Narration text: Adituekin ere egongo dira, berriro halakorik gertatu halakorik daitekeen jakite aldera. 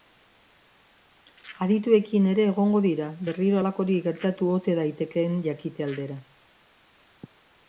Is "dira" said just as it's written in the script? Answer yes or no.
yes